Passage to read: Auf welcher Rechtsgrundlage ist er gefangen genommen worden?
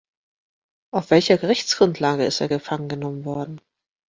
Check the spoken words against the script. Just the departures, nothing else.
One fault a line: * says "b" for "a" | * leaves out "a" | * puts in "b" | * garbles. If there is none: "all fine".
all fine